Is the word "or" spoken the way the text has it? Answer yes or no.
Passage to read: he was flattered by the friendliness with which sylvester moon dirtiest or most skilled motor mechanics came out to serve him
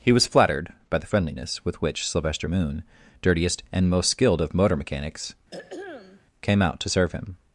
no